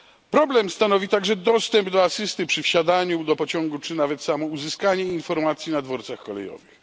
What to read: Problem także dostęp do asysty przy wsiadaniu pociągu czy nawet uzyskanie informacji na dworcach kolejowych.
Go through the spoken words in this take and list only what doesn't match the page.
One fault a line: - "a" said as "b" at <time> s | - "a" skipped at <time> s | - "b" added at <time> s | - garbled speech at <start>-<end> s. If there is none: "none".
- "stanowi" added at 0.7 s
- "do" added at 3.2 s
- "samo" added at 4.2 s